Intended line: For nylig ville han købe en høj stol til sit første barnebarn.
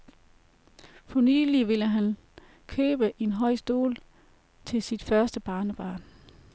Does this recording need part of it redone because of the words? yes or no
no